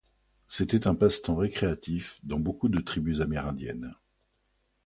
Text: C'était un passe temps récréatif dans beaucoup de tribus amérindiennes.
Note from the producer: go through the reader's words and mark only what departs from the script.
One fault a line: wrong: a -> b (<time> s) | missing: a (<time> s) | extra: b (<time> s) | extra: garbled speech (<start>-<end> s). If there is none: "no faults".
no faults